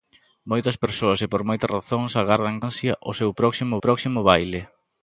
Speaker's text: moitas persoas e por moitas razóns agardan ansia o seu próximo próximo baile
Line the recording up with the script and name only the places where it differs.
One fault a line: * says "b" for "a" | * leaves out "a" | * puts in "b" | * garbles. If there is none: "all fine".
all fine